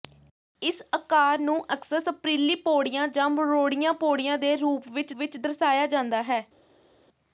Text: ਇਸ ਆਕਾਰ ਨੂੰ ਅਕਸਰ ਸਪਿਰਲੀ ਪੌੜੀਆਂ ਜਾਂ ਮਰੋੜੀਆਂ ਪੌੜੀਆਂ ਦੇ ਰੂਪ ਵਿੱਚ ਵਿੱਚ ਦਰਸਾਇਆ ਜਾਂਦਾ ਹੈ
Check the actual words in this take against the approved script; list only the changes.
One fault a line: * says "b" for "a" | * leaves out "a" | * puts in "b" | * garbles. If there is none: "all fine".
all fine